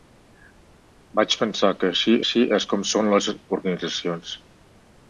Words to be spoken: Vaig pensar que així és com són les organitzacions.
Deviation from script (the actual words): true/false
true